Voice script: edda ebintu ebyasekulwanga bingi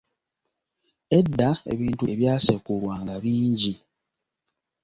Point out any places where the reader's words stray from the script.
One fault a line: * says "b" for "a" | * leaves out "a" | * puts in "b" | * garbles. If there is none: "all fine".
all fine